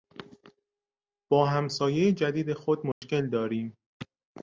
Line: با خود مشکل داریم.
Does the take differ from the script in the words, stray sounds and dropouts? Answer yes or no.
yes